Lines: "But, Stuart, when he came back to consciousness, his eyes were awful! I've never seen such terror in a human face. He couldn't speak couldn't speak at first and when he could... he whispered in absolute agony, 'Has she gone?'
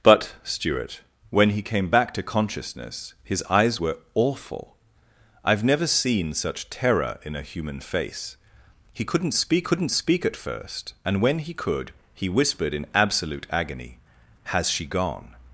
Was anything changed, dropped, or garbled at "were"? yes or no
no